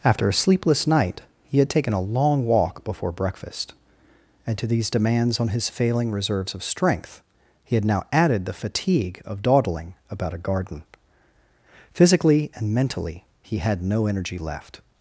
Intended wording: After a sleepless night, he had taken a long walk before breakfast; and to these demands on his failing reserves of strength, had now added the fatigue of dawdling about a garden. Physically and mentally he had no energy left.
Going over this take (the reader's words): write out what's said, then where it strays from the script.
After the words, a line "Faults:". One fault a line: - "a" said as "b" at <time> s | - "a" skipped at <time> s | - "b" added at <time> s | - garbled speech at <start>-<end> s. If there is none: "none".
After a sleepless night, he had taken a long walk before breakfast; and to these demands on his failing reserves of strength, he had now added the fatigue of dawdling about a garden. Physically and mentally he had no energy left.
Faults:
- "he" added at 7.6 s